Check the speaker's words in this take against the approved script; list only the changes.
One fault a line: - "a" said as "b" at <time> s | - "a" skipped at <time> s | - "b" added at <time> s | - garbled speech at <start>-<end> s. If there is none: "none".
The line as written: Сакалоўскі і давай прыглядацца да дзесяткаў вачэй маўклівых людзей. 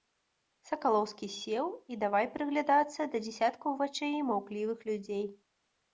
- "сеў" added at 1.3 s